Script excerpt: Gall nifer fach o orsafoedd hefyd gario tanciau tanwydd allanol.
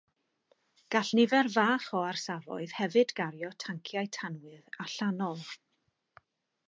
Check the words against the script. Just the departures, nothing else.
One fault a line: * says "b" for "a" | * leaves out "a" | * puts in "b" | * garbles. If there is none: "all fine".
all fine